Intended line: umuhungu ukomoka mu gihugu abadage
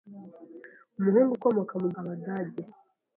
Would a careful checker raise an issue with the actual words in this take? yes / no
yes